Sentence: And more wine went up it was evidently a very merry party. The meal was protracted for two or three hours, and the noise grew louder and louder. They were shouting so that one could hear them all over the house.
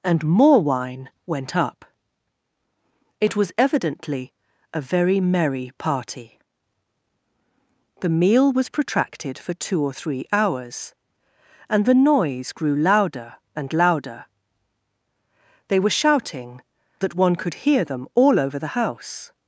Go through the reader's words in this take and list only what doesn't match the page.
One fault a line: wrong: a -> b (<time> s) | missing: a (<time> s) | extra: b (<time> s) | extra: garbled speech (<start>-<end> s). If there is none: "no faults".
missing: so (16.6 s)